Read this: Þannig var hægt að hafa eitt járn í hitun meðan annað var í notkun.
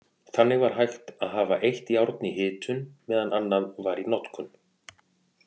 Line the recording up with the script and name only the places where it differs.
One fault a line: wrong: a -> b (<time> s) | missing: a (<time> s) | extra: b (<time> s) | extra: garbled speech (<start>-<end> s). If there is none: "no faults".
no faults